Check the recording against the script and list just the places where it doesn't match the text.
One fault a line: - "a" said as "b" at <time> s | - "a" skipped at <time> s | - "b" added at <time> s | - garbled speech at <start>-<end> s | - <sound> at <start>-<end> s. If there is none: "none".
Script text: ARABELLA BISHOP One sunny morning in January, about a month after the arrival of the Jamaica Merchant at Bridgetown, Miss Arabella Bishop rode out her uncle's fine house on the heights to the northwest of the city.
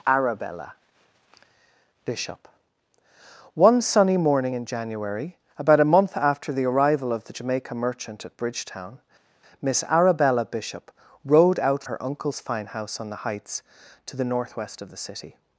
none